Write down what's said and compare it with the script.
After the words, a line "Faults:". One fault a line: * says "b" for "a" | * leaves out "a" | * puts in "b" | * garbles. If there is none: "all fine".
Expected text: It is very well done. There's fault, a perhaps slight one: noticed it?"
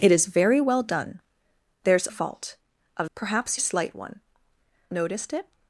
It is very well done. There's fault, a perhaps slight one: noticed it?"
Faults:
all fine